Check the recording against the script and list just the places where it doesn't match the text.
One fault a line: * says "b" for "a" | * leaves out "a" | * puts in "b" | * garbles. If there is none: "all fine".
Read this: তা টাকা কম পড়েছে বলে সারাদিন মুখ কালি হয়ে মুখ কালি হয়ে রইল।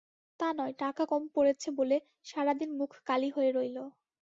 * puts in "নয়"
* leaves out "মুখ কালি হয়ে"